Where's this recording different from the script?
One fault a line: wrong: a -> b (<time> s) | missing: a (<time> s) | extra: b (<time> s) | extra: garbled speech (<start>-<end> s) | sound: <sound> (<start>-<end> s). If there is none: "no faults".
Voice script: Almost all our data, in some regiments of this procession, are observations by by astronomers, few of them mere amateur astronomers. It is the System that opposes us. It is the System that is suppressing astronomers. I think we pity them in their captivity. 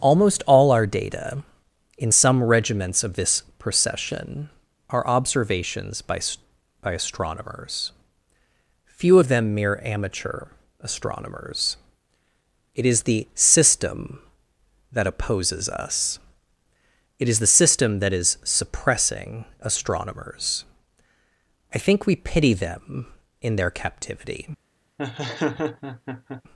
sound: laugh (25.0-26.4 s)